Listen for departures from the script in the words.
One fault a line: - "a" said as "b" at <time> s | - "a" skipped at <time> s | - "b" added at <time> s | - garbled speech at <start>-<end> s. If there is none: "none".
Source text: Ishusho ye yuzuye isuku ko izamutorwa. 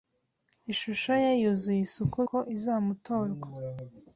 none